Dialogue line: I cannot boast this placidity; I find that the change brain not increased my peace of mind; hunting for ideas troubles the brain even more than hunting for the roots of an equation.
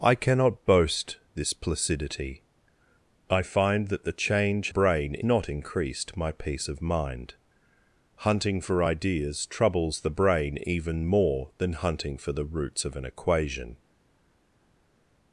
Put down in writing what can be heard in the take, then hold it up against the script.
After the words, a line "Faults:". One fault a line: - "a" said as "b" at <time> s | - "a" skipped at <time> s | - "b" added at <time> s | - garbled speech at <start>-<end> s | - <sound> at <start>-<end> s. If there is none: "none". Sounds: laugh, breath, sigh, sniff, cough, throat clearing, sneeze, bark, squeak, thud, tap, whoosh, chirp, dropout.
I cannot boast this placidity; I find that the change brain not increased my peace of mind; hunting for ideas troubles the brain even more than hunting for the roots of an equation.
Faults:
none